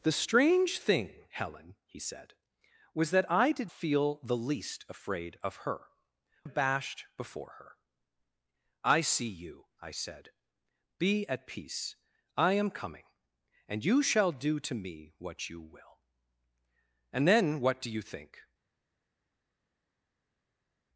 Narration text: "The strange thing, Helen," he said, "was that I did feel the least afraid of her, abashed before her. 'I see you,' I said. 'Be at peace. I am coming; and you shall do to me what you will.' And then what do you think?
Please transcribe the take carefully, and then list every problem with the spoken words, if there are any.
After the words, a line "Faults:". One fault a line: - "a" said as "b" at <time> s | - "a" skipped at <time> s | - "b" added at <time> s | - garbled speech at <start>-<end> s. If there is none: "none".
"The strange thing, Helen," he said, "was that I did feel the least afraid of her, abashed before her. 'I see you,' I said. 'Be at peace. I am coming; and you shall do to me what you will.' And then what do you think?
Faults:
none